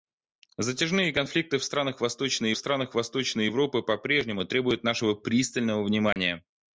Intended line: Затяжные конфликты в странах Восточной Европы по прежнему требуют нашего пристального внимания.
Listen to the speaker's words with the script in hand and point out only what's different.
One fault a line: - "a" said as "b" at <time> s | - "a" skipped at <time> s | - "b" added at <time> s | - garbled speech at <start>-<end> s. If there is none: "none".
- "странах Восточной" added at 2.6 s